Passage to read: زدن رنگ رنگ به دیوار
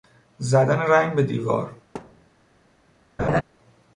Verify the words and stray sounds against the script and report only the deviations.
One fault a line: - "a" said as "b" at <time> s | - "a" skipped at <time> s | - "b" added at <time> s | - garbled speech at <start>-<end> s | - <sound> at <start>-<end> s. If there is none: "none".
- "رنگ" skipped at 1.1 s
- thud at 1.9-2.3 s
- laugh at 3.2-3.4 s